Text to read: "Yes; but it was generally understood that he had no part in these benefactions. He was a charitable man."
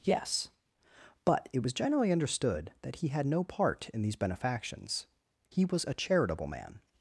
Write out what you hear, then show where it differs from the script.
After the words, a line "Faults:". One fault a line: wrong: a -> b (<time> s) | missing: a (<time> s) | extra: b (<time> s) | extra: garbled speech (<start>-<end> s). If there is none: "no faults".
"Yes; but it was generally understood that he had no part in these benefactions. He was a charitable man."
Faults:
no faults